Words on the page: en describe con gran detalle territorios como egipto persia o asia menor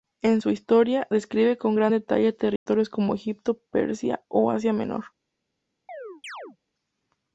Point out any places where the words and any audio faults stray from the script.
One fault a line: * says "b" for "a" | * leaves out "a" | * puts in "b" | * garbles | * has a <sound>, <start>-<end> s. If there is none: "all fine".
* puts in "su historia"
* has a dropout, 2.6-2.7 s
* has a chirp, 5.9-6.6 s